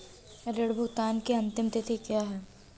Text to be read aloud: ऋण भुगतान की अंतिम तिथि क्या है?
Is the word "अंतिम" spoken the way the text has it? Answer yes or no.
yes